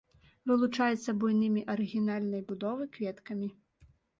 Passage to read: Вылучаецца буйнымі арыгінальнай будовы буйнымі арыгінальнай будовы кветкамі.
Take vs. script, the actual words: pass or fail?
fail